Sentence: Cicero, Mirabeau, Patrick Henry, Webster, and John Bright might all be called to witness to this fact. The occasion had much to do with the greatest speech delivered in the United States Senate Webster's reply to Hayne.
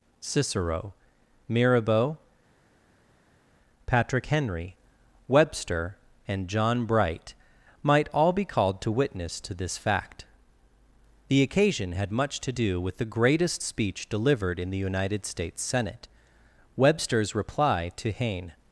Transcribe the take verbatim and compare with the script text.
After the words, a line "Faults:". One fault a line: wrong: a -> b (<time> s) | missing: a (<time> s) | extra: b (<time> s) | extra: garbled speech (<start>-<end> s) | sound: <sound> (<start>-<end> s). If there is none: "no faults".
Cicero, Mirabeau, Patrick Henry, Webster, and John Bright might all be called to witness to this fact. The occasion had much to do with the greatest speech delivered in the United States Senate Webster's reply to Hayne.
Faults:
no faults